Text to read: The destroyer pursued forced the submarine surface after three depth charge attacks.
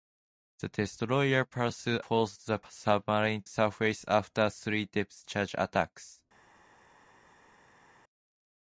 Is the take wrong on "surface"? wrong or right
right